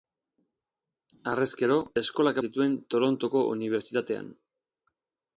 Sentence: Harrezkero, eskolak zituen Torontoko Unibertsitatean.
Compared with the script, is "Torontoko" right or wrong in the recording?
right